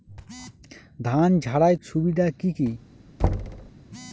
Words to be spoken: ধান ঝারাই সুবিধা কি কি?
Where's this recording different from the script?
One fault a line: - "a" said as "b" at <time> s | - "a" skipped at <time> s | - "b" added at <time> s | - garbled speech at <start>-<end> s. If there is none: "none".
none